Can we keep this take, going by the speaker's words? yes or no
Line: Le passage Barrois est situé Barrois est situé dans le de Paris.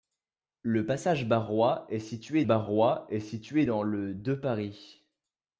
yes